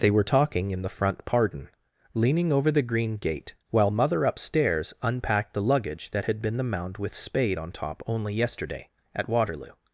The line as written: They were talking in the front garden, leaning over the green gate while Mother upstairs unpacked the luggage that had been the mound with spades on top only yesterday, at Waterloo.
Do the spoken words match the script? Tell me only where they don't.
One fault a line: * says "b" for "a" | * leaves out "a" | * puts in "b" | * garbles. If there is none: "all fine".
* says "pardon" for "garden"
* says "spade" for "spades"